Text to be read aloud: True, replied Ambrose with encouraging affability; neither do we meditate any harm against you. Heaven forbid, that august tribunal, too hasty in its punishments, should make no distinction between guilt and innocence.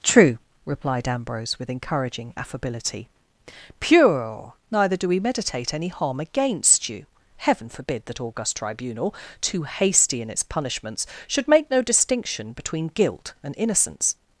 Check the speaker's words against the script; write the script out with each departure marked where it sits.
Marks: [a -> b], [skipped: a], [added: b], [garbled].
True, replied Ambrose with encouraging affability; [added: pure] neither do we meditate any harm against you. Heaven forbid, that august tribunal, too hasty in its punishments, should make no distinction between guilt and innocence.